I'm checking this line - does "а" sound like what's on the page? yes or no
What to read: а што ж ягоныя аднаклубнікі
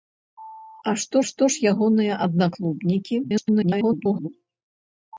yes